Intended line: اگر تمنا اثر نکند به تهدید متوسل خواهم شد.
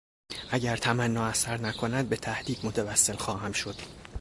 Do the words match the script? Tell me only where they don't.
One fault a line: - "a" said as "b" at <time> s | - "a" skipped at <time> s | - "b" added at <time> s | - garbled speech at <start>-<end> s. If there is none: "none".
none